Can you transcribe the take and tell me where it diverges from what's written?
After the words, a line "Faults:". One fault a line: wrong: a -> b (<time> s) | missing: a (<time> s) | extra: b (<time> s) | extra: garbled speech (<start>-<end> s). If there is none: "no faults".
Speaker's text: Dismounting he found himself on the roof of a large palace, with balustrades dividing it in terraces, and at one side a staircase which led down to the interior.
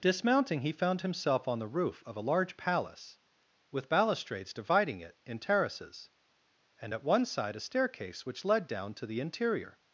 Dismounting he found himself on the roof of a large palace, with balustrades dividing it in terraces, and at one side a staircase which led down to the interior.
Faults:
no faults